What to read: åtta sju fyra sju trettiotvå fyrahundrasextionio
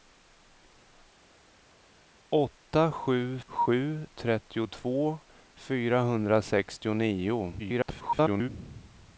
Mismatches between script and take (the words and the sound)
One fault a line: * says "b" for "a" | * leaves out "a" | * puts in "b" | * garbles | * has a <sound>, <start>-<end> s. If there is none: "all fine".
* leaves out "fyra"
* garbles